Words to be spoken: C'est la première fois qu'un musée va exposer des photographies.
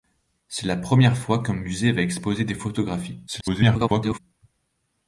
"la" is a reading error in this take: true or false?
false